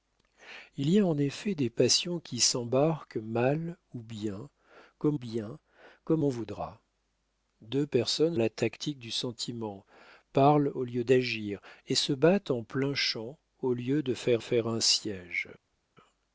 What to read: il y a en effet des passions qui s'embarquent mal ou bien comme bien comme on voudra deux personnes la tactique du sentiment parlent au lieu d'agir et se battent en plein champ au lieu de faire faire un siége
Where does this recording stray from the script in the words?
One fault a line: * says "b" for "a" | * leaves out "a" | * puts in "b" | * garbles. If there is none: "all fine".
all fine